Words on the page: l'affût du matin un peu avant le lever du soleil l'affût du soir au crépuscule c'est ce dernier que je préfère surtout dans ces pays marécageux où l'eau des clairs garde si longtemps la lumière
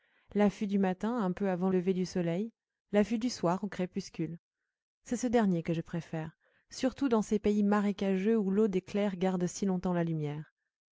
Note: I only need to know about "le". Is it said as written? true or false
false